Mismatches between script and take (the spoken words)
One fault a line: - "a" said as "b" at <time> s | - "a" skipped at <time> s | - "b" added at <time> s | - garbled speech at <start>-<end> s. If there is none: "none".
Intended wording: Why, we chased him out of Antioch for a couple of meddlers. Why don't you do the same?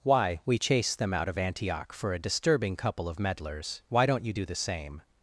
- "him" said as "them" at 1.0 s
- "disturbing" added at 2.2 s